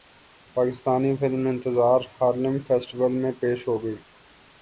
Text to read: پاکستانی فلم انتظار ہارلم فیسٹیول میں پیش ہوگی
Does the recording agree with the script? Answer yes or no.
yes